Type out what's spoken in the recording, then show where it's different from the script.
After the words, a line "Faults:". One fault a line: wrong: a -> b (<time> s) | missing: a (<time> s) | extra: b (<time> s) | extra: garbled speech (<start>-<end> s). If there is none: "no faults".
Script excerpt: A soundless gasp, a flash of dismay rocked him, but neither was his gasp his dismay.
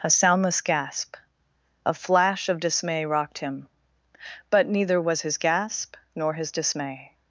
A soundless gasp, a flash of dismay rocked him, but neither was his gasp nor his dismay.
Faults:
extra: nor (6.2 s)